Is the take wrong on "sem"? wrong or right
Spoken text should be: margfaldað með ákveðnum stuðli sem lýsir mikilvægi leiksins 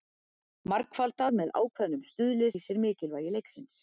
wrong